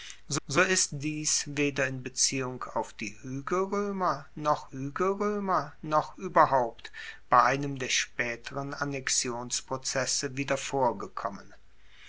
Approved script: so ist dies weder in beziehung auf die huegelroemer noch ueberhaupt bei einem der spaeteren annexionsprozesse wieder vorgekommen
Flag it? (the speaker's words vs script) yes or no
yes